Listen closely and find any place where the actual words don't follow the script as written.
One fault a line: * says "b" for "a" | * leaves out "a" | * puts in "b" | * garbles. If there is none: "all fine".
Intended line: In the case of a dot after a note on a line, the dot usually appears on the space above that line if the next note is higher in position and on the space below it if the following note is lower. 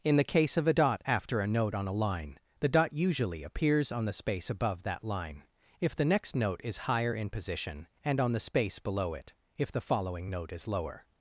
all fine